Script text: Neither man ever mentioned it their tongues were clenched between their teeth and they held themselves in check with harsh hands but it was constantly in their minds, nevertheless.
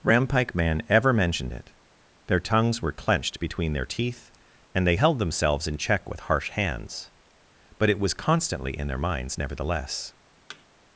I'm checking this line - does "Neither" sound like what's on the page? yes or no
no